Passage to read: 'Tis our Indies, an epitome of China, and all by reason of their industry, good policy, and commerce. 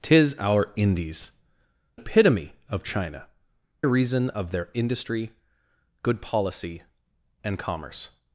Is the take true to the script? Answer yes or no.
no